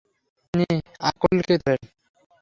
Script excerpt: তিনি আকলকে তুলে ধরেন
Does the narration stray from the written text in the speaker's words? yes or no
yes